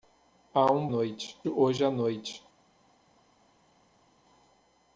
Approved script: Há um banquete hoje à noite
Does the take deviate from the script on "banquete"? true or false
true